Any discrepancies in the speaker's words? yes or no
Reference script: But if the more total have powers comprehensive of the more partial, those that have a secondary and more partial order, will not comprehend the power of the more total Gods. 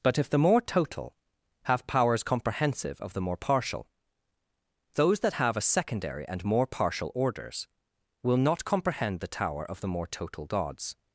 yes